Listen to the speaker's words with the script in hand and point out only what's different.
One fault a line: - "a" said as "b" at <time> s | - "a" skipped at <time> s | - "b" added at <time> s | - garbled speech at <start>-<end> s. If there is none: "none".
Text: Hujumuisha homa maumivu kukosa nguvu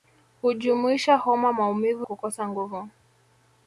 none